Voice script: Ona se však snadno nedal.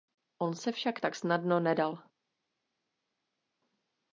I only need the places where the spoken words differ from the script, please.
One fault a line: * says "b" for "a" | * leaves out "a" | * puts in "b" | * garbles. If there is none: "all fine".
* says "On" for "Ona"
* puts in "tak"